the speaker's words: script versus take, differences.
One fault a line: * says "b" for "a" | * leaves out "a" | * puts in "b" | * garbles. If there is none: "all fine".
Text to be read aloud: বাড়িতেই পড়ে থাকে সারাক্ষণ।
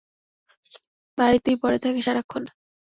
all fine